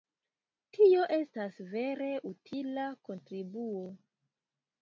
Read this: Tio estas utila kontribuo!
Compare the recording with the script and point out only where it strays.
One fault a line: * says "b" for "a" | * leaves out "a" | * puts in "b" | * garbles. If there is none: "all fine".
* puts in "vere"